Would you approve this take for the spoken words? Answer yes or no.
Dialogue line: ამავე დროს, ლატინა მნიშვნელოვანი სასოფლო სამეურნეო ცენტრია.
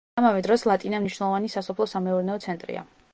yes